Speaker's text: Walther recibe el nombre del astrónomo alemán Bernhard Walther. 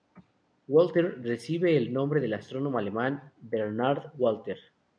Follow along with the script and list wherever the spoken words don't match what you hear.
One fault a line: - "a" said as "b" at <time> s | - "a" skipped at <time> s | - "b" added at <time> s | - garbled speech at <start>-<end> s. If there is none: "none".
none